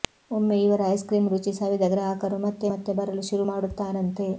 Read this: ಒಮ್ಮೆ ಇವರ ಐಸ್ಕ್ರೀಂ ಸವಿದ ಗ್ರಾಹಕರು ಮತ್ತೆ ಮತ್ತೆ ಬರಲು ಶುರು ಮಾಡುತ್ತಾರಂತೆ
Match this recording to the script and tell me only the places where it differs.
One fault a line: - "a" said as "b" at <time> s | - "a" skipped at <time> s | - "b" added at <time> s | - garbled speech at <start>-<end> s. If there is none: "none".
- "ರುಚಿ" added at 1.3 s